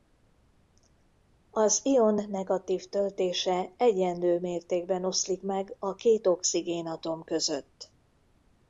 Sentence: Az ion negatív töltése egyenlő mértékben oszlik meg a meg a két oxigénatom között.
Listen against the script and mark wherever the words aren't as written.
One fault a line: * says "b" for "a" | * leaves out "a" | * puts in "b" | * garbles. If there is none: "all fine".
* leaves out "meg a"